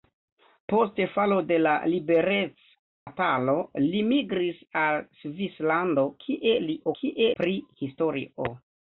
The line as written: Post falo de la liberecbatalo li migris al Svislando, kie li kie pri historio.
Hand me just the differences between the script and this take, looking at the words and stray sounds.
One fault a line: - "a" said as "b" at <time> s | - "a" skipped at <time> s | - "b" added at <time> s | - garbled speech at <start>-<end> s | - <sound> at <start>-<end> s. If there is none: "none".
- dropout at 2.9-3.1 s